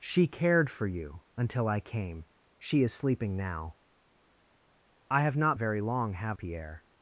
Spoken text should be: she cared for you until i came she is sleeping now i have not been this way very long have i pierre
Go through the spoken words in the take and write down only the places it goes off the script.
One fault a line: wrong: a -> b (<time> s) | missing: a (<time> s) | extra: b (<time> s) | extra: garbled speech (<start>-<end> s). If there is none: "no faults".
missing: been this way (5.6 s)
missing: i (6.4 s)